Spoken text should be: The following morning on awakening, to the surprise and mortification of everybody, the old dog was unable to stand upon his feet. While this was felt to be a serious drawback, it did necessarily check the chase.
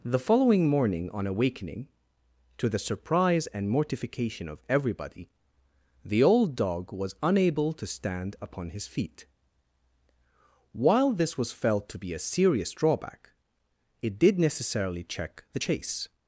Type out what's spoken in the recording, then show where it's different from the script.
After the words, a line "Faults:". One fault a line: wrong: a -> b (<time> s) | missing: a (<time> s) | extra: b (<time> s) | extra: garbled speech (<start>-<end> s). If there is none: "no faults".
The following morning on awakening, to the surprise and mortification of everybody, the old dog was unable to stand upon his feet. While this was felt to be a serious drawback, it did necessarily check the chase.
Faults:
no faults